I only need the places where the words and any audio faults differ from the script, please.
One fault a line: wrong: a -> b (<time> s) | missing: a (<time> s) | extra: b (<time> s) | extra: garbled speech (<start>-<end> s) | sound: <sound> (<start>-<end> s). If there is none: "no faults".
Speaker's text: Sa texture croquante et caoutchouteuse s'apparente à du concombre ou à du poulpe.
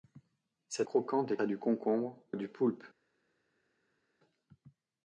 missing: texture (0.8 s)
missing: caoutchouteuse s'apparente (1.4 s)
missing: ou (2.2 s)